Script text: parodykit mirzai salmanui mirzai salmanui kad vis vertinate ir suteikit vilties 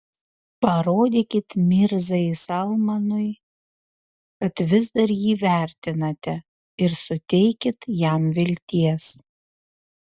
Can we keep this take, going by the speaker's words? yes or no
no